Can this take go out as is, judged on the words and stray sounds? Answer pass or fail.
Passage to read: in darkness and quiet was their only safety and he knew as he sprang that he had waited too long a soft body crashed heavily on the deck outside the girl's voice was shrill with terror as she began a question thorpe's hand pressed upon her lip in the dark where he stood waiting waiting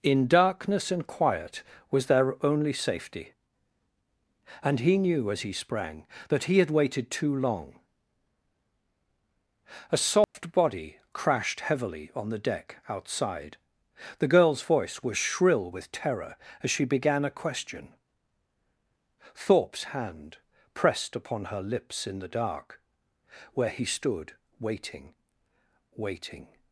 fail